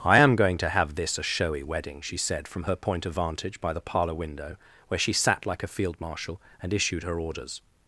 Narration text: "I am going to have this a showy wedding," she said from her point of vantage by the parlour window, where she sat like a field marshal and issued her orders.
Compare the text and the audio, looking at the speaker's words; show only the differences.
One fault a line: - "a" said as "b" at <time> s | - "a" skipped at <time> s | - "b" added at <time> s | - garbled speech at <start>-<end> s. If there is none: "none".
none